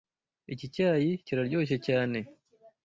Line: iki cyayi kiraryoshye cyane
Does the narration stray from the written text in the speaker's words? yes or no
no